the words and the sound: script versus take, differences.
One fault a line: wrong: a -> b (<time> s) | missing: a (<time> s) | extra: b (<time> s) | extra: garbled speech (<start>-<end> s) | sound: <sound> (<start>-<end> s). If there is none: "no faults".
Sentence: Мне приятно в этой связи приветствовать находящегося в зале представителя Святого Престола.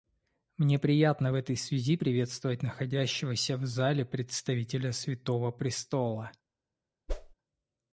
sound: whoosh (7.1-7.3 s)